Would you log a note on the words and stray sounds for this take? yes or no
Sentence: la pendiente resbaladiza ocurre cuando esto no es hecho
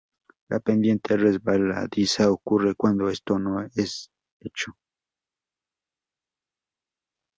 no